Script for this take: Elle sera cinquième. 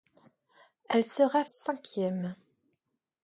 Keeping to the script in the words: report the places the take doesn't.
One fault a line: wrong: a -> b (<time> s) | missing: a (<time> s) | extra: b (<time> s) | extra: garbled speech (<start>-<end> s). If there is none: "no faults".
no faults